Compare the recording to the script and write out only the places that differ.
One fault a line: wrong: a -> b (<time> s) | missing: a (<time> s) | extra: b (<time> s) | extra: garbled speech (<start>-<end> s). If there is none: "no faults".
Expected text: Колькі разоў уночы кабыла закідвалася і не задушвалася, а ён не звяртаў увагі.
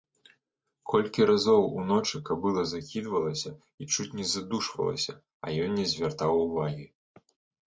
extra: чуць (3.9 s)